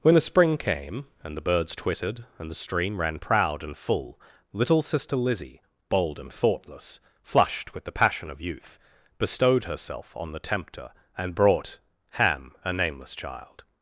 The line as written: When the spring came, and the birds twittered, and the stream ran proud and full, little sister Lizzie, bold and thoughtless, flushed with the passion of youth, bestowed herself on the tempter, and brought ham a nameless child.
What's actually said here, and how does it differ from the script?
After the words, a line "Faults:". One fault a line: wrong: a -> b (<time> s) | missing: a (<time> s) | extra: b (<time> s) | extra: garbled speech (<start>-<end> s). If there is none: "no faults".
When the spring came, and the birds twittered, and the stream ran proud and full, little sister Lizzie, bold and thoughtless, flushed with the passion of youth, bestowed herself on the tempter, and brought ham a nameless child.
Faults:
no faults